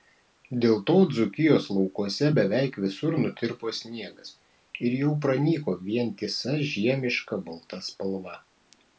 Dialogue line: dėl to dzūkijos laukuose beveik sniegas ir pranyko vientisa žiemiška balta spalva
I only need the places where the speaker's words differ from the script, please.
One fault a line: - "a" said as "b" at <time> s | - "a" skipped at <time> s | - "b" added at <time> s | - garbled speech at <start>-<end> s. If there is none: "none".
- "visur nutirpo" added at 2.8 s
- "jau" added at 5.0 s